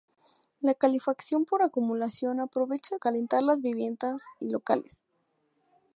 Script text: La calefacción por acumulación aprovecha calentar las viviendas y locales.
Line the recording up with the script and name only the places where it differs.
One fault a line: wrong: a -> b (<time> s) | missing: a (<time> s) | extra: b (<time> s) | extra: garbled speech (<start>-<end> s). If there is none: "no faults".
no faults